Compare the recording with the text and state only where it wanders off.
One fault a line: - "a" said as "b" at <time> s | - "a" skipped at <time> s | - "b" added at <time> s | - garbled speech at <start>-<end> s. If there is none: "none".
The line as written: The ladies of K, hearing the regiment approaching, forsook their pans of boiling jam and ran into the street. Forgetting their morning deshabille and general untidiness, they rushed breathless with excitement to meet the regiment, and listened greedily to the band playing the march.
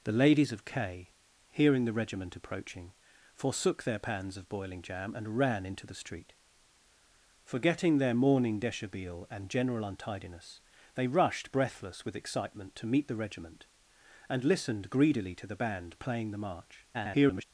- garbled speech at 16.9-17.4 s